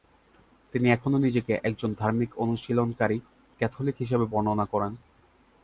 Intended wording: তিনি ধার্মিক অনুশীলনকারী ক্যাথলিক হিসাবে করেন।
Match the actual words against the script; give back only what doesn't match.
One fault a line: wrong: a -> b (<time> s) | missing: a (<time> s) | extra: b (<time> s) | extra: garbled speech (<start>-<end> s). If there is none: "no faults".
extra: এখনও নিজেকে একজন (0.9 s)
extra: বর্ণনা (4.3 s)